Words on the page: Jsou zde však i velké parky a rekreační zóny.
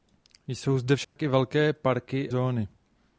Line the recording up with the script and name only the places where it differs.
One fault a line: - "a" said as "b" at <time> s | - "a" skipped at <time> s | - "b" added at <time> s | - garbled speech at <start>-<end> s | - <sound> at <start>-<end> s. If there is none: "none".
- dropout at 1.0-1.2 s
- "a rekreační" skipped at 2.3 s